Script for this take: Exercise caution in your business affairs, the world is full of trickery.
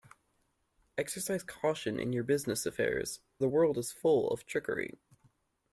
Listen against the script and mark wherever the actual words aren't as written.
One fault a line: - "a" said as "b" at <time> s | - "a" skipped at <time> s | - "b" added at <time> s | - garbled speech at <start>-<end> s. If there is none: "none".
none